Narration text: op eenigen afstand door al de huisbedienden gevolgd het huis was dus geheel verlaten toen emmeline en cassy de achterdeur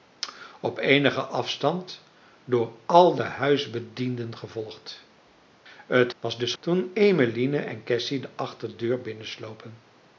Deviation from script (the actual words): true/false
true